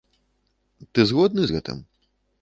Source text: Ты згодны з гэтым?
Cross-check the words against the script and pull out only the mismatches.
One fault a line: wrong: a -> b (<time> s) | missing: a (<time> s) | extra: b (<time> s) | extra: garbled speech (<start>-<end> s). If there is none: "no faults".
no faults